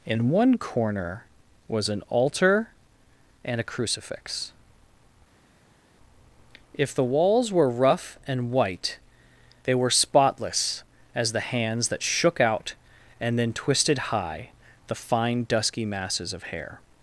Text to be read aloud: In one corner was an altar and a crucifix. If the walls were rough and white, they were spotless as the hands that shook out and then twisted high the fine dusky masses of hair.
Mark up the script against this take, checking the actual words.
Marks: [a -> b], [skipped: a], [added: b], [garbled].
In one corner was an altar and a crucifix. If the walls were rough and white, they were spotless as the hands that shook out and then twisted high the fine dusky masses of hair.